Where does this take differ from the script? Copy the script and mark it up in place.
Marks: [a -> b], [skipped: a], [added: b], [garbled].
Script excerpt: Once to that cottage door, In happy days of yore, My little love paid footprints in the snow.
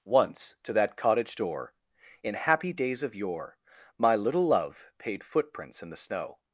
Once to that cottage door, In happy days of yore, My little love paid footprints in the snow.